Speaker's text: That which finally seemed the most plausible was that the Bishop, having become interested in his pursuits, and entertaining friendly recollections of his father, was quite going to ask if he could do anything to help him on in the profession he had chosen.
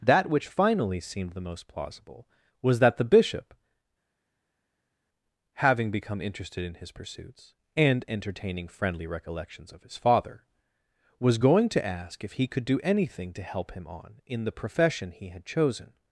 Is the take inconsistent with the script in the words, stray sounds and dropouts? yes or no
yes